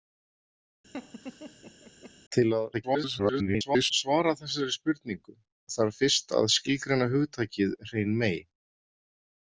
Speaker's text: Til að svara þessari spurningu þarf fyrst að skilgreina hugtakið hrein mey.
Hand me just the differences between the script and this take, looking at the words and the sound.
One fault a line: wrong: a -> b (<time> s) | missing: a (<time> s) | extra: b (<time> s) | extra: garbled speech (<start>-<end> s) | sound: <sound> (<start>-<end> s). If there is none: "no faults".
sound: laugh (0.9-2.1 s)
extra: garbled speech (2.7-3.9 s)